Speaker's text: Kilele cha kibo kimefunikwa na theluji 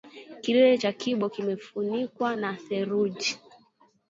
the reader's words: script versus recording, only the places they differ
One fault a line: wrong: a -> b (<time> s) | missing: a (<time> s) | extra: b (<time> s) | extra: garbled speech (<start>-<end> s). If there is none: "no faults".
no faults